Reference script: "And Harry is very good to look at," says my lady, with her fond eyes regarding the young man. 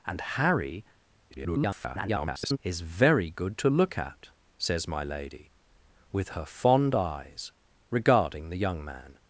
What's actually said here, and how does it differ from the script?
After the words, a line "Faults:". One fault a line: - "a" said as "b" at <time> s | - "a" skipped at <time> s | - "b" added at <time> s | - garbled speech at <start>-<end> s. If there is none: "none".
"And Harry [garbled] is very good to look at," says my lady, with her fond eyes regarding the young man.
Faults:
- garbled speech at 1.3-2.6 s